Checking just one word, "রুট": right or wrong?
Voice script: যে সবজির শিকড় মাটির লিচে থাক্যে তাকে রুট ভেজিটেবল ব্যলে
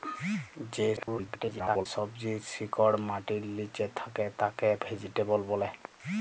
wrong